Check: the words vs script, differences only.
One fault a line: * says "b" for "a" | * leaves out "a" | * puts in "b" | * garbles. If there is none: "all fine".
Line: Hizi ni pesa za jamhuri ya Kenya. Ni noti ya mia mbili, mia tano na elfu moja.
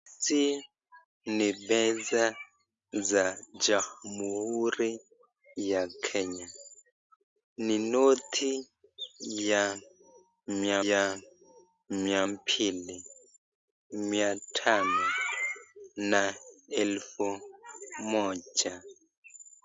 * puts in "ya mia"